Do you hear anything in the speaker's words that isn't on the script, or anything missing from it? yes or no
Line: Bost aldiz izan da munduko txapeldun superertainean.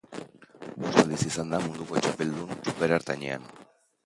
no